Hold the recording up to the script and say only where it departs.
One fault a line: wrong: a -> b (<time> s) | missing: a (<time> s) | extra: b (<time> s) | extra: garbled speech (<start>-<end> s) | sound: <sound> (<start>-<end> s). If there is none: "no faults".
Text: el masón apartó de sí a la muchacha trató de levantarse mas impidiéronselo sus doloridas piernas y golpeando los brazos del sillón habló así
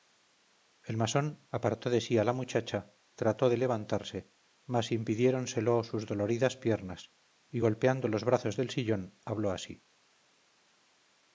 no faults